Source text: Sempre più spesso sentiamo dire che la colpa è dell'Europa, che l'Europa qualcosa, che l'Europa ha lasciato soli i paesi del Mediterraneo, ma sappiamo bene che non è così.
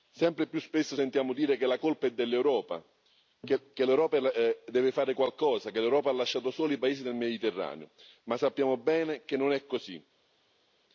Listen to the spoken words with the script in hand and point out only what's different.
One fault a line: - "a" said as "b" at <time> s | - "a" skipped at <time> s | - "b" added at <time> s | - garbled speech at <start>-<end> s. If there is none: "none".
- "deve fare" added at 4.2 s